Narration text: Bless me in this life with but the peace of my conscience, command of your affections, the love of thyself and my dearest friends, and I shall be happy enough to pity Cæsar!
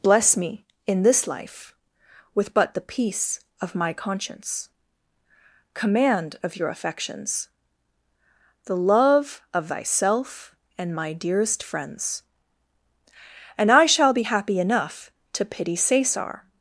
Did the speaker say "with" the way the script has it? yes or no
yes